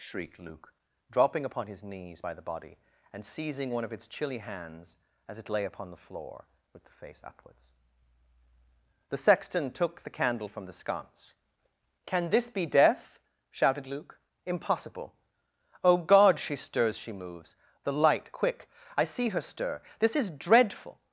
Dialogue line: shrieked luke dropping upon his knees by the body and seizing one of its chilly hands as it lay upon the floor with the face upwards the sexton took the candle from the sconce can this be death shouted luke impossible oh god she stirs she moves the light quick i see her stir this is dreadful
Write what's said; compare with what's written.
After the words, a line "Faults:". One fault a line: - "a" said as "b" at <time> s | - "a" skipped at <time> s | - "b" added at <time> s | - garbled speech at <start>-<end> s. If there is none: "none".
shrieked luke dropping upon his knees by the body and seizing one of its chilly hands as it lay upon the floor with the face upwards the sexton took the candle from the sconce can this be death shouted luke impossible oh god she stirs she moves the light quick i see her stir this is dreadful
Faults:
none